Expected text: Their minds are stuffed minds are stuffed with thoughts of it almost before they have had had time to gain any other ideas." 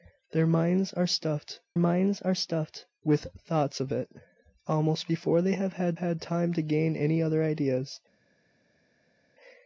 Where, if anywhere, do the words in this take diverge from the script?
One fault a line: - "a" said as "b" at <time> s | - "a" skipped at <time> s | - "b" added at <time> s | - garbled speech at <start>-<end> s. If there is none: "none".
none